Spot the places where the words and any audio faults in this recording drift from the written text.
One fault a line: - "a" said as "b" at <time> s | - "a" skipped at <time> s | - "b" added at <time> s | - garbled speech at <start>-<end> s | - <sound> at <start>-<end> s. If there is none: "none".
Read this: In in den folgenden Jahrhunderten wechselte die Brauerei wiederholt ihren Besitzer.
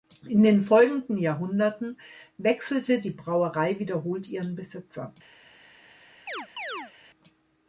- "in" skipped at 0.4 s
- chirp at 6.3-6.9 s